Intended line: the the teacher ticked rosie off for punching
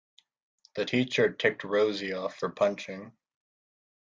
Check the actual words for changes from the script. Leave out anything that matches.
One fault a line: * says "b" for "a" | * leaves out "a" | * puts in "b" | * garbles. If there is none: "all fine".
* leaves out "the"